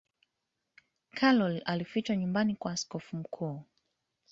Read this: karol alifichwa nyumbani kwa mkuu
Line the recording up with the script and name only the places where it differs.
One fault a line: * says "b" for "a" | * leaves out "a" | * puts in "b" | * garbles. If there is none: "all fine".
* puts in "askofu"